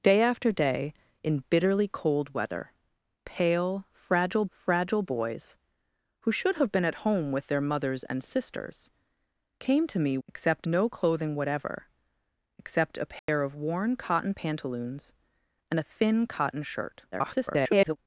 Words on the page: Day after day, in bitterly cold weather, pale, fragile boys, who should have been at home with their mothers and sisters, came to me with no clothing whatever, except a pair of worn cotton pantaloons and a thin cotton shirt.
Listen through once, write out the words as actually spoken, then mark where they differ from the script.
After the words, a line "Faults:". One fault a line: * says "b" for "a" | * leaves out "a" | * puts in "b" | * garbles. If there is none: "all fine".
Day after day, in bitterly cold weather, pale, fragile fragile boys, who should have been at home with their mothers and sisters, came to me except no clothing whatever, except a pair of worn cotton pantaloons and a thin cotton shirt. [garbled]
Faults:
* puts in "fragile"
* says "except" for "with"
* garbles